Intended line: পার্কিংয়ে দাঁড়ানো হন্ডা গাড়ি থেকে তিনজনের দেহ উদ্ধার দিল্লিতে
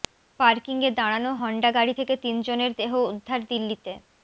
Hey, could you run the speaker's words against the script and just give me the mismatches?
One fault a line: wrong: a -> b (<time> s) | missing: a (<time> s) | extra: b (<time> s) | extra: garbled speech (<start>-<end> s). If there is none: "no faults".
no faults